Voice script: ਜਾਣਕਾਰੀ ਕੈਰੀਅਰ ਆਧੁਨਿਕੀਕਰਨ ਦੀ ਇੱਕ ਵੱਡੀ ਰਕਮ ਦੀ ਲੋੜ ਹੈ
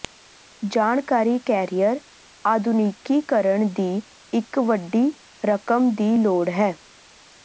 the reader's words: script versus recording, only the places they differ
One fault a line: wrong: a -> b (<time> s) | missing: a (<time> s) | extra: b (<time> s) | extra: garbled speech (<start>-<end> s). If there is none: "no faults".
no faults